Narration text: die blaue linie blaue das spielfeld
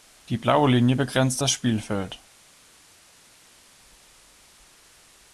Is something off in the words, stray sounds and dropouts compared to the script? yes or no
yes